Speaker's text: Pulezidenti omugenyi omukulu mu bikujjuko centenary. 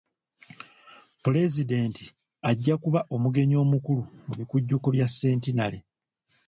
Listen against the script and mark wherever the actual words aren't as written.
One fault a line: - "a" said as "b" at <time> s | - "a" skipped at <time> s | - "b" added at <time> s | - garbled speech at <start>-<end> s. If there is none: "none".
- "ajja kuba" added at 2.5 s
- "bya" added at 5.0 s